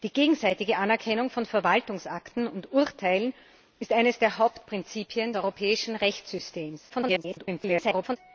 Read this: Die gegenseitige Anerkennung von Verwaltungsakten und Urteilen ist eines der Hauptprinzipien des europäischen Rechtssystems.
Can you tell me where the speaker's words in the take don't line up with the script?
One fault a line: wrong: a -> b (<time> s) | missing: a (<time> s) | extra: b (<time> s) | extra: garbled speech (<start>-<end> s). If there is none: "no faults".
missing: des (5.3 s)
extra: garbled speech (6.9-8.2 s)